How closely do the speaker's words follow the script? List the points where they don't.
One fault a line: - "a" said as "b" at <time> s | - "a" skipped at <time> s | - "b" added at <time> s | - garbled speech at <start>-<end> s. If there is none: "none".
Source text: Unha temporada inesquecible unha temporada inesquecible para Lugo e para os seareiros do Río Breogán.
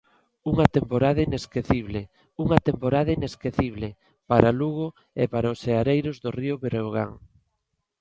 none